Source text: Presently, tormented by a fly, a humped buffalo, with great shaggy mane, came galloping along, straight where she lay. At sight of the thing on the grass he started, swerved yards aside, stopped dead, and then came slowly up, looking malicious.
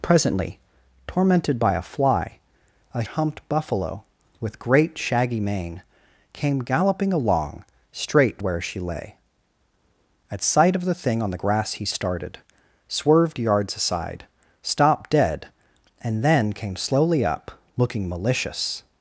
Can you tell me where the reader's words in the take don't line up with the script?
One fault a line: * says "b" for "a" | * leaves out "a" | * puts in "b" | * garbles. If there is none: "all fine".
all fine